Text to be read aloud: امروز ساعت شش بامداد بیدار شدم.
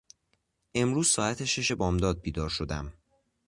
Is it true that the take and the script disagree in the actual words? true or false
false